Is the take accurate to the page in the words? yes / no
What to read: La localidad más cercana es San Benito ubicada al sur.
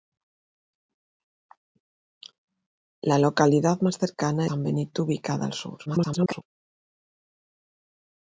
no